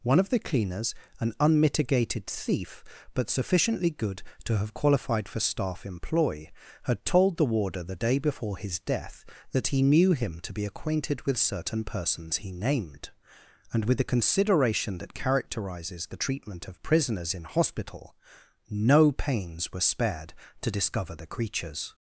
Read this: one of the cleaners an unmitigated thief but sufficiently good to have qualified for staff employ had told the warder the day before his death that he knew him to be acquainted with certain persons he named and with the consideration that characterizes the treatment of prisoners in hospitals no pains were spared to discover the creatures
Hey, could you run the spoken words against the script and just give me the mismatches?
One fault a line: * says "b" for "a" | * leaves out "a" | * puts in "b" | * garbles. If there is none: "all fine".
* says "hospital" for "hospitals"